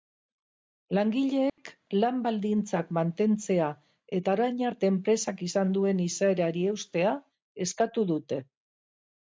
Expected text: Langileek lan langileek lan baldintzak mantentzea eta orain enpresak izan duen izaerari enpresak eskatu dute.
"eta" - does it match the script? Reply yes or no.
yes